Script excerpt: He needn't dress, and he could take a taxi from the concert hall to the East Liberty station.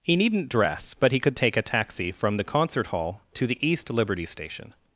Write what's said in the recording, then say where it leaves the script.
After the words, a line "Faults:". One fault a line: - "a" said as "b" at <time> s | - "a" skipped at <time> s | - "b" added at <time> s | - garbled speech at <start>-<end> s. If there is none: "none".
He needn't dress, but he could take a taxi from the concert hall to the East Liberty station.
Faults:
- "and" said as "but" at 0.9 s